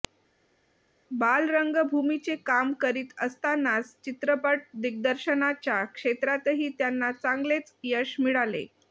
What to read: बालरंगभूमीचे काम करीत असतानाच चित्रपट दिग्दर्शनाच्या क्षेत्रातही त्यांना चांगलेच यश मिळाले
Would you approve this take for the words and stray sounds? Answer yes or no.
yes